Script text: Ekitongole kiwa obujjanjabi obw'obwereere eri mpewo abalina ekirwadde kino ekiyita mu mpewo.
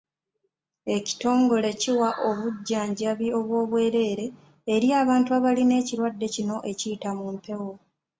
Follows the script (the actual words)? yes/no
no